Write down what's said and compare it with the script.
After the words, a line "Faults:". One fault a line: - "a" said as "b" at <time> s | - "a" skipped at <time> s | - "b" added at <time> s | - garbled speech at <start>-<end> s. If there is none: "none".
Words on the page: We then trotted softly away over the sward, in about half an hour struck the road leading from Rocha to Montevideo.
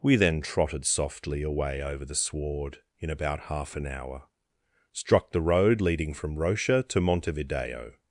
We then trotted softly away over the sward, in about half an hour struck the road leading from Rocha to Montevideo.
Faults:
none